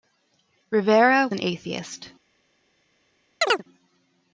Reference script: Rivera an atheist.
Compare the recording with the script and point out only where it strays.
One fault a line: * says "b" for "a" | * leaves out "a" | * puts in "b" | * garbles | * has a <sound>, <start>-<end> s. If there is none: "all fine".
* has a chirp, 3.4-3.6 s